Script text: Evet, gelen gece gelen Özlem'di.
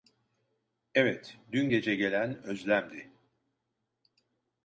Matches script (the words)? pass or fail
fail